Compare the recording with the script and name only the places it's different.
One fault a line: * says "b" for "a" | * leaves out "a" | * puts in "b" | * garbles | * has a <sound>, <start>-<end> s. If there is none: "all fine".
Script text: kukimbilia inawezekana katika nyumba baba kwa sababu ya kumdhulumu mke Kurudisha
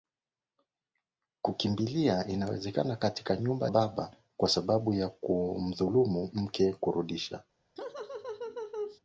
* has a laugh, 7.8-9.0 s